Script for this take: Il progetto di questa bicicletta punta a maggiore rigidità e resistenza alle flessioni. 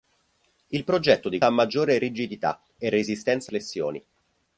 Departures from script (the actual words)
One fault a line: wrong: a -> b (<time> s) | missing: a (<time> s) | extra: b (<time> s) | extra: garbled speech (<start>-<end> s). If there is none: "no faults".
missing: questa bicicletta punta (1.4 s)
missing: alle (3.5 s)